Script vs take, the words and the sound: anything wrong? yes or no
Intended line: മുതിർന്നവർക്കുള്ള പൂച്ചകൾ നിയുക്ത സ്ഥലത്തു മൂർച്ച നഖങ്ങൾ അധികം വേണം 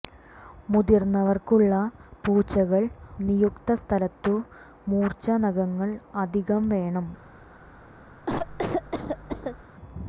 yes